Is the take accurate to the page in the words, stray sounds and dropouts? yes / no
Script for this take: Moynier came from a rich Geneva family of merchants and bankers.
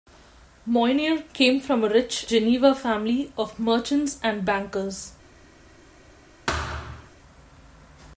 no